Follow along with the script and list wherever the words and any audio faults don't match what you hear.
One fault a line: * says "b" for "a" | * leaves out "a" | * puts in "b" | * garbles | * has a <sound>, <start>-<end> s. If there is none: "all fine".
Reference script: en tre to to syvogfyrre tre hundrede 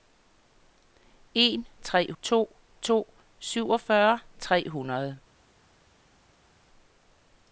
all fine